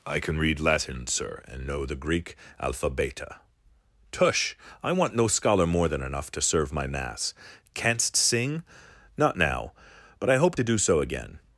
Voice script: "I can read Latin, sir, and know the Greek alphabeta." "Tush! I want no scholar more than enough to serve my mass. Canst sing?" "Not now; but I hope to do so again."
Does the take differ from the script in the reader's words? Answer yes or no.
no